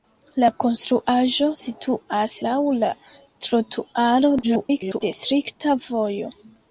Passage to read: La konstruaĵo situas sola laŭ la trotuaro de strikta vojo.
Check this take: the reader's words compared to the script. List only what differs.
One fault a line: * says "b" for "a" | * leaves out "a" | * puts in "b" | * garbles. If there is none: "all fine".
* leaves out "sola"
* garbles